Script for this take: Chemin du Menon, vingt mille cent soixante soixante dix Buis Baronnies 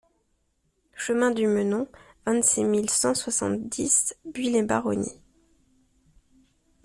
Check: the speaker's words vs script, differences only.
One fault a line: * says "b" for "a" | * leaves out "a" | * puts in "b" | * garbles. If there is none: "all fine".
* puts in "six"
* leaves out "soixante"
* puts in "les"